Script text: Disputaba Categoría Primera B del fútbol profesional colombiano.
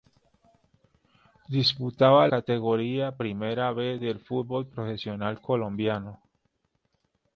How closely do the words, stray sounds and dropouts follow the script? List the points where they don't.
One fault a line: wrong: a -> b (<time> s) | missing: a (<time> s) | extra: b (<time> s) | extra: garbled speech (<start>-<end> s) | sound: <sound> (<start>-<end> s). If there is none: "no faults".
no faults